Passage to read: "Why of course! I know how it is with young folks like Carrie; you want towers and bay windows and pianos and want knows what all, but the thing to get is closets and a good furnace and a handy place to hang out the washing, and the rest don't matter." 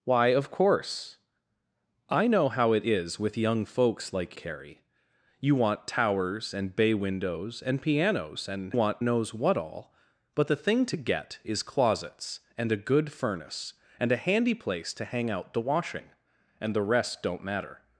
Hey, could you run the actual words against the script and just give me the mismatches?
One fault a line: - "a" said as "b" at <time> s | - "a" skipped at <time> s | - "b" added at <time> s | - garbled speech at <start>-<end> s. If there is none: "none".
none